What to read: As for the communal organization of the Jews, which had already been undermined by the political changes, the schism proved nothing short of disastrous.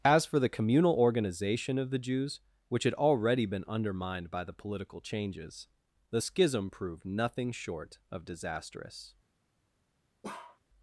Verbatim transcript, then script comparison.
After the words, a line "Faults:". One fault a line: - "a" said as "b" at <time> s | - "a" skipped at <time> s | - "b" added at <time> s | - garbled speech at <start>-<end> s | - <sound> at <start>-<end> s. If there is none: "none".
As for the communal organization of the Jews, which had already been undermined by the political changes, the schism proved nothing short of disastrous.
Faults:
- bark at 10.2-10.6 s